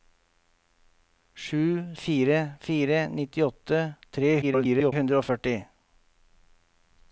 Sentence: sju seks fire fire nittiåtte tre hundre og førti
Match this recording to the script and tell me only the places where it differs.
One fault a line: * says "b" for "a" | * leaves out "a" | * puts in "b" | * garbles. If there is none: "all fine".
* leaves out "seks"
* garbles